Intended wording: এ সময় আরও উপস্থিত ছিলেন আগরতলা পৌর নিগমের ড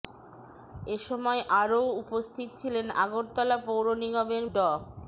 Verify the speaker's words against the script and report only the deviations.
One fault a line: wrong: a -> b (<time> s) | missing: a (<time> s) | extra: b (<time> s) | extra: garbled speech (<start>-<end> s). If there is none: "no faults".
no faults